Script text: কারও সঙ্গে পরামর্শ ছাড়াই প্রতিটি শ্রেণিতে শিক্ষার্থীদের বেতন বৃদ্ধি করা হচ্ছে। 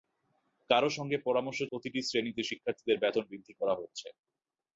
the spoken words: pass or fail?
fail